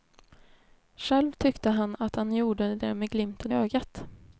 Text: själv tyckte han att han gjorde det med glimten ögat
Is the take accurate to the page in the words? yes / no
yes